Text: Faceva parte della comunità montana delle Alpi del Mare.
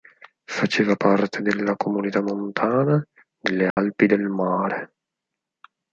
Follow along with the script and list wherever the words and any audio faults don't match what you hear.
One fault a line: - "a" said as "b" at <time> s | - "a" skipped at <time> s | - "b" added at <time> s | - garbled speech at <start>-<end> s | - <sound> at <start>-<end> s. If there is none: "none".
- dropout at 3.7-3.8 s